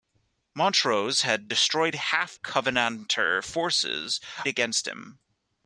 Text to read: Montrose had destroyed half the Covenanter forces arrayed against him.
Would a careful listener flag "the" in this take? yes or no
yes